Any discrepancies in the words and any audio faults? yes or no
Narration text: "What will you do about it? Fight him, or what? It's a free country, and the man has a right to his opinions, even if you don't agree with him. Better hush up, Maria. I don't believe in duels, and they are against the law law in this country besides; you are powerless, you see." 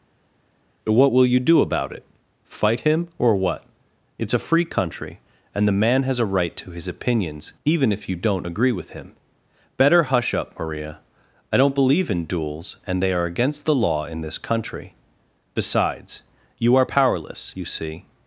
yes